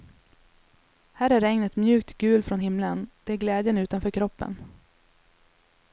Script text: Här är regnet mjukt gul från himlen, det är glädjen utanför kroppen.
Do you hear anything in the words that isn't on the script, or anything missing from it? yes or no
no